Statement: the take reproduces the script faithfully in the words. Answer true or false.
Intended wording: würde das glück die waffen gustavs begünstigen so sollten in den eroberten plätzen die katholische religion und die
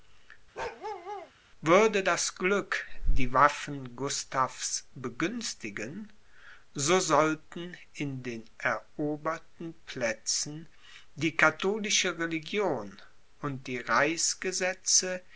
true